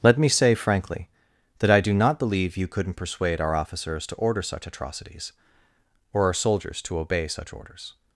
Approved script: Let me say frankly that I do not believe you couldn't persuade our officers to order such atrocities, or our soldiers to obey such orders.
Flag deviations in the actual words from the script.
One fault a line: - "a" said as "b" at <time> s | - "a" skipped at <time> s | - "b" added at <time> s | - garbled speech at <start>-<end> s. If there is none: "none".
none